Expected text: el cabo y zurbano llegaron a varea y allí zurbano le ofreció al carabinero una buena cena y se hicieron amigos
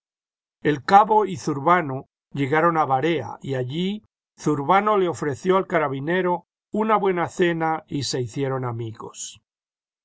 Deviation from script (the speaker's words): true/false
false